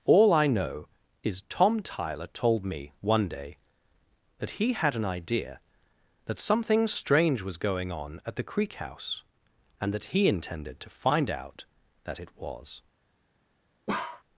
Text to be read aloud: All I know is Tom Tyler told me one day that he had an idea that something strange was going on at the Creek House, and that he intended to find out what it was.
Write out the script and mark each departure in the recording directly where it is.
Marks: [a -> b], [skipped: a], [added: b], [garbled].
All I know is Tom Tyler told me one day that he had an idea that something strange was going on at the Creek House, and that he intended to find out [what -> that] it was.